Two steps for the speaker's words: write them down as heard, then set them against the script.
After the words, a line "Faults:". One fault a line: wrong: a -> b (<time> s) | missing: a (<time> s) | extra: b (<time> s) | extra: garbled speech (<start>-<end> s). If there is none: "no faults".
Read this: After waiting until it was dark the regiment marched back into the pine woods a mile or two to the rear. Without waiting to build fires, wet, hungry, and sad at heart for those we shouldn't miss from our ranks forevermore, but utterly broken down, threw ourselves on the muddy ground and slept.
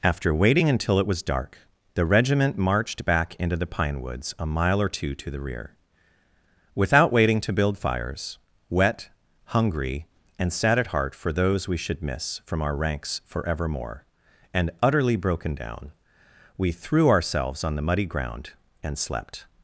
After waiting until it was dark the regiment marched back into the pine woods a mile or two to the rear. Without waiting to build fires, wet, hungry, and sad at heart for those we should miss from our ranks forevermore, and utterly broken down, we threw ourselves on the muddy ground and slept.
Faults:
wrong: shouldn't -> should (11.8 s)
wrong: but -> and (14.5 s)
extra: we (16.6 s)